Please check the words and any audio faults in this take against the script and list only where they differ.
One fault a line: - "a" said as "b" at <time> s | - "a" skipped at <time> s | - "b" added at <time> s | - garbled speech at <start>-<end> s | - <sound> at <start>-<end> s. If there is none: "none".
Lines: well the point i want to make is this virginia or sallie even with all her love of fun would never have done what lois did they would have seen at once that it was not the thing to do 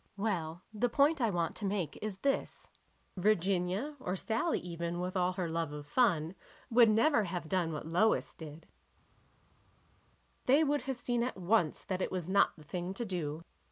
none